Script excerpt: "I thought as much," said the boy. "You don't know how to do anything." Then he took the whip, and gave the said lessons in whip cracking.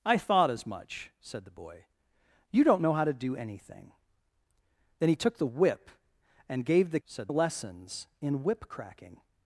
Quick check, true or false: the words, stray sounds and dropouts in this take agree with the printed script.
true